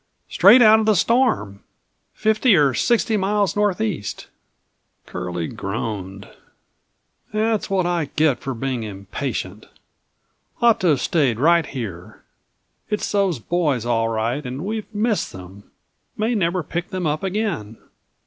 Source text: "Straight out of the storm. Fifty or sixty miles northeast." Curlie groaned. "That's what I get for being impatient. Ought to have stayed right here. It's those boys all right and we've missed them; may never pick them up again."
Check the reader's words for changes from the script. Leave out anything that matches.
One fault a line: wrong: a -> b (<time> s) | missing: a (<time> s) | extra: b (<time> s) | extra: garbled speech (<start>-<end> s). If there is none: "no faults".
no faults